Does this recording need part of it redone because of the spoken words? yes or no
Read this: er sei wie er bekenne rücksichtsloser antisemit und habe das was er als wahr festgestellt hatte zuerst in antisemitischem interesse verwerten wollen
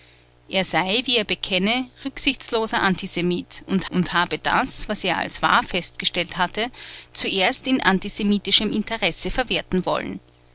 yes